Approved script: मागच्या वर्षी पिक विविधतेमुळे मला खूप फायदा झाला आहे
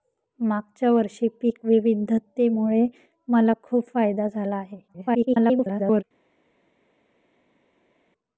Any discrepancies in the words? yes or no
yes